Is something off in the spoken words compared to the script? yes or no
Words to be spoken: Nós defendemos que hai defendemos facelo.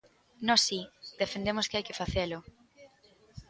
yes